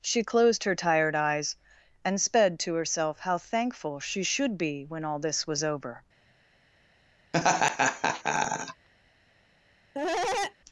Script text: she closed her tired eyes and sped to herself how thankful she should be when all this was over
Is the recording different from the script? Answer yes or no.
no